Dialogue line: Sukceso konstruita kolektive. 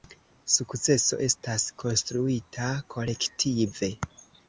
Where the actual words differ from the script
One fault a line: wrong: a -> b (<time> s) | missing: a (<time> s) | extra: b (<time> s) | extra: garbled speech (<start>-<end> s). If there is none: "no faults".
extra: estas (1.3 s)